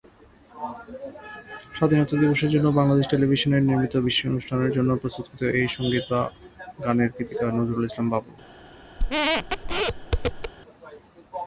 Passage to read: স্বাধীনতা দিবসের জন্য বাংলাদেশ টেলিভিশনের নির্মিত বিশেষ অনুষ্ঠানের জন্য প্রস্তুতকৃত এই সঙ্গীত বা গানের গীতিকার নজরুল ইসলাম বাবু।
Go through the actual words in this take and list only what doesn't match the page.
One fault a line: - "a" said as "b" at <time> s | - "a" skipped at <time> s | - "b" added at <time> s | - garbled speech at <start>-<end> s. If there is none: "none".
none